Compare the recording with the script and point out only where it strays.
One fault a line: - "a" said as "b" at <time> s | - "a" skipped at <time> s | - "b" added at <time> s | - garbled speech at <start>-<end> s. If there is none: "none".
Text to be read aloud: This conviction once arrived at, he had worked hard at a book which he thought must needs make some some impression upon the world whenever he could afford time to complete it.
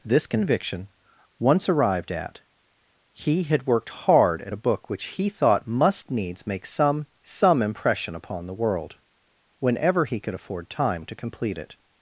none